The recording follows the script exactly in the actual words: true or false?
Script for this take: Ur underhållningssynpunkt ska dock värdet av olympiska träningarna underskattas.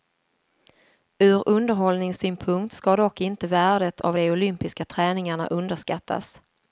false